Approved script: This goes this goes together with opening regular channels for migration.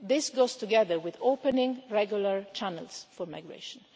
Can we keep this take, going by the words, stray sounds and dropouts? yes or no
no